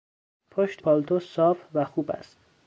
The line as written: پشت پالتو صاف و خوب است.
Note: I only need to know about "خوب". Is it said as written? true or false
true